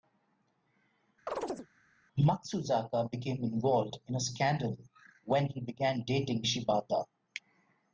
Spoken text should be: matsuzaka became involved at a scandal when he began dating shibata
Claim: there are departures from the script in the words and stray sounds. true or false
true